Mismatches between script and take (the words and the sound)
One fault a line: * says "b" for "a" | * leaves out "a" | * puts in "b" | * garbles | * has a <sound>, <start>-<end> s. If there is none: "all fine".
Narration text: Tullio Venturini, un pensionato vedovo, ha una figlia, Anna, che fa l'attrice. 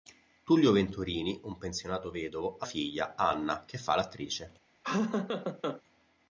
* leaves out "una"
* has a laugh, 4.8-5.8 s